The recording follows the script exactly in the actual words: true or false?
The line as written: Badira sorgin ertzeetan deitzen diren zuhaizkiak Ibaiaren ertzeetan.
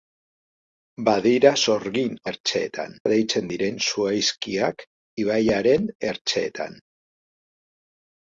true